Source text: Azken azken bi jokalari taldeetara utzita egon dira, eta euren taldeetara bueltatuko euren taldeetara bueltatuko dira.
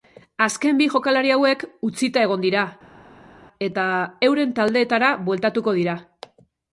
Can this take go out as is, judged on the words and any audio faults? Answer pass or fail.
fail